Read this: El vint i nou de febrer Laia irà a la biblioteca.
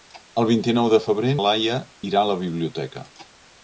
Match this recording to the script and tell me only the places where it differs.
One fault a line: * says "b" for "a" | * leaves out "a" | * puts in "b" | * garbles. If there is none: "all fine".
all fine